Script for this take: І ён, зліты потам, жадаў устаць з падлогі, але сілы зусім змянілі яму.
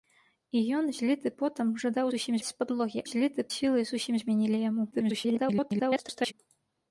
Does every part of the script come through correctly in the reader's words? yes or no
no